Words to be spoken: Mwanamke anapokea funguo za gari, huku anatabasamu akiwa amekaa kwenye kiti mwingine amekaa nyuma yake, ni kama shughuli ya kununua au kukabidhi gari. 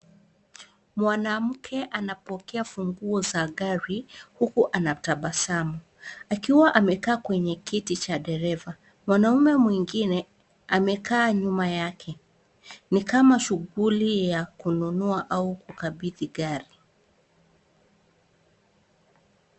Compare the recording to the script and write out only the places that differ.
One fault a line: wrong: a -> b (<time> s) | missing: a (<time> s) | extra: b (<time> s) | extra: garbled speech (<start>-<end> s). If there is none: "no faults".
extra: cha dereva Mwanaume (8.0 s)